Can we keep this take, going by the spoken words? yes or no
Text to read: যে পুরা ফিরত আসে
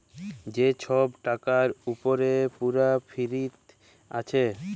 no